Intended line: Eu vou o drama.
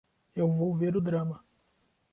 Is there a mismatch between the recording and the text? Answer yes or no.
yes